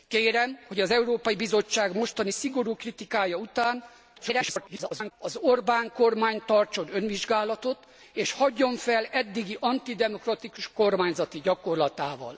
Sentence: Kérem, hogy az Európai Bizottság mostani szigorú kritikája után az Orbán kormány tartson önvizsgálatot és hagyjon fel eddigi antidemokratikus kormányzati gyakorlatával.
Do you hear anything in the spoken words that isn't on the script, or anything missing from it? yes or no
yes